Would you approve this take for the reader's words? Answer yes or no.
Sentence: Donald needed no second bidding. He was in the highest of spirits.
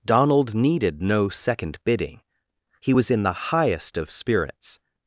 yes